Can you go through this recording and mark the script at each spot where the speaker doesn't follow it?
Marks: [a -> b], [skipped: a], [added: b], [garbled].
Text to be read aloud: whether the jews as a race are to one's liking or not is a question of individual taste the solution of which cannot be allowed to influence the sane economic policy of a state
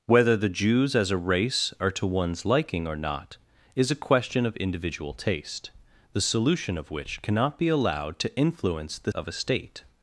whether the jews as a race are to one's liking or not is a question of individual taste the solution of which cannot be allowed to influence the [skipped: sane economic policy] of a state